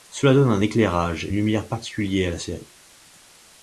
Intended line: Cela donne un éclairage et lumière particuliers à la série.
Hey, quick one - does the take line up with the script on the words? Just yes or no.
yes